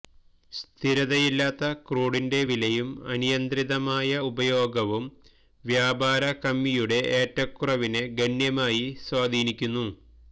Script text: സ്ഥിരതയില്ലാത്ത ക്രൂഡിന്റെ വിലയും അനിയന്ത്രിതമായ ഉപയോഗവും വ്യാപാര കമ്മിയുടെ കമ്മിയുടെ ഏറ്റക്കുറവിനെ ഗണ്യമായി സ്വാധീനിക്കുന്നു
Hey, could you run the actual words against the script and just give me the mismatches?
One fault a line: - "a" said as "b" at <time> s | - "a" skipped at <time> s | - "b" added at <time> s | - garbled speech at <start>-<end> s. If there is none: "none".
- "കമ്മിയുടെ" skipped at 7.0 s